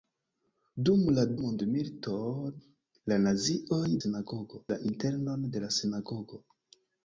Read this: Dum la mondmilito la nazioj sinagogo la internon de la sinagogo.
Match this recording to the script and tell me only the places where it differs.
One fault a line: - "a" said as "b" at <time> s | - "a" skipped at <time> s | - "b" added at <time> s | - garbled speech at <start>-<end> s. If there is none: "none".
none